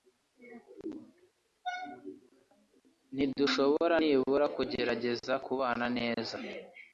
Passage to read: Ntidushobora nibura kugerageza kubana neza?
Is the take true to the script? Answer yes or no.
yes